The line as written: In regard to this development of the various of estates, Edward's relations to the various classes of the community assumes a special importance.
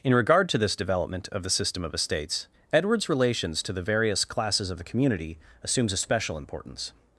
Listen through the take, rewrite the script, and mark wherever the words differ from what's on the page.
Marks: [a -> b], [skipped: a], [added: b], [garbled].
In regard to this development of the [various -> system] of estates, Edward's relations to the various classes of the community assumes a special importance.